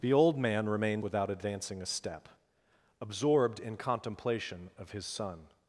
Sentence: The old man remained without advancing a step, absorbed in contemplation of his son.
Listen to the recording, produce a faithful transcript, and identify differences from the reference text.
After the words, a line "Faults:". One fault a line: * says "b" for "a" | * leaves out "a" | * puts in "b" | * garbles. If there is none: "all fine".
The old man remained without advancing a step, absorbed in contemplation of his son.
Faults:
all fine